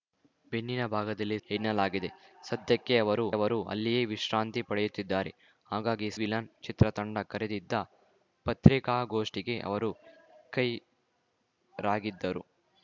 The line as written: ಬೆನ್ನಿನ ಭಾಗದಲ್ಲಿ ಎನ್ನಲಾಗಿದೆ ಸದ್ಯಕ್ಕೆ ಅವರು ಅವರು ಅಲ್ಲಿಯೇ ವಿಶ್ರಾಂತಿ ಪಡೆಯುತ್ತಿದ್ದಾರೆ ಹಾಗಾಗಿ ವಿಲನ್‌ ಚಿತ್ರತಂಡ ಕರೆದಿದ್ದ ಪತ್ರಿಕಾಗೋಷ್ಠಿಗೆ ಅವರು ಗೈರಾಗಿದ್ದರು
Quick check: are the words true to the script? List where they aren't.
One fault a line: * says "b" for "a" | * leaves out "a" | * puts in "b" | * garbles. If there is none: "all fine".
all fine